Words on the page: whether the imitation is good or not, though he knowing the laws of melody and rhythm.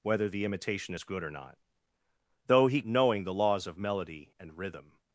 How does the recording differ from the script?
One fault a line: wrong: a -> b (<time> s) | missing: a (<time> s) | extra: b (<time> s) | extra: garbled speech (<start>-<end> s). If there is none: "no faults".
no faults